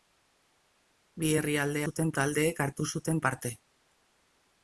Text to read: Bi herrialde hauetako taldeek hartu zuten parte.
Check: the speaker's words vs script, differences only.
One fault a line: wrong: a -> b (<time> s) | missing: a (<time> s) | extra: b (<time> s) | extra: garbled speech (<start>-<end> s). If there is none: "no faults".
wrong: hauetako -> zuten (1.9 s)